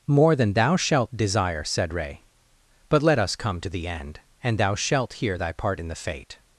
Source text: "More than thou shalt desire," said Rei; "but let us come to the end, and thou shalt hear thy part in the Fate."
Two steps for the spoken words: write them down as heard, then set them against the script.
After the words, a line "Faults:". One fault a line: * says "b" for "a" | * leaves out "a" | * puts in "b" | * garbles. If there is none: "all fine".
"More than thou shalt desire," said Rei; "but let us come to the end, and thou shalt hear thy part in the Fate."
Faults:
all fine